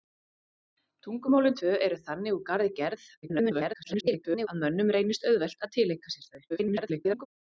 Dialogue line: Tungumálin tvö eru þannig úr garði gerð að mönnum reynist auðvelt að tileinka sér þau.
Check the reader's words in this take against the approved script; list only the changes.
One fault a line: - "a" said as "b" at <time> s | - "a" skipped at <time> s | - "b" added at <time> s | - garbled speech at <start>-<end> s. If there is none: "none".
- garbled speech at 3.2-4.5 s
- garbled speech at 6.5-7.3 s